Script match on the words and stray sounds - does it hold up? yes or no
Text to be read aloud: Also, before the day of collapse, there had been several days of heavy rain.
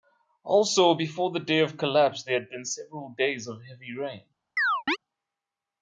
no